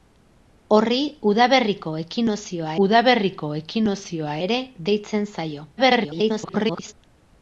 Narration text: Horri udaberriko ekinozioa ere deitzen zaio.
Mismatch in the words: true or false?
true